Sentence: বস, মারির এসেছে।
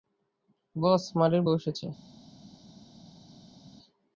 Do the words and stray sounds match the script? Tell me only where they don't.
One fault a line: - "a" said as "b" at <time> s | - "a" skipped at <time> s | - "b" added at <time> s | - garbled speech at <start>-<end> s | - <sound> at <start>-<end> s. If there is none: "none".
- "বউ" added at 1.4 s